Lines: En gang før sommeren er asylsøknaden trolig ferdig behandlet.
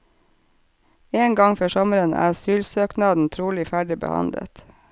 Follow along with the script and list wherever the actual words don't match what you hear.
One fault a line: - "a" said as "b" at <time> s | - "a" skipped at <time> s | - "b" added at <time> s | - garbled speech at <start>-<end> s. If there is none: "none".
none